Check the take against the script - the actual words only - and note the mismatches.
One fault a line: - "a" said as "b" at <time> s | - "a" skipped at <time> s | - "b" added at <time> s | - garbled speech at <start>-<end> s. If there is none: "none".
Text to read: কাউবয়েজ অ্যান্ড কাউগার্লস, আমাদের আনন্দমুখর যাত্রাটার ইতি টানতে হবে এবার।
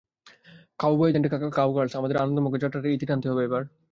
none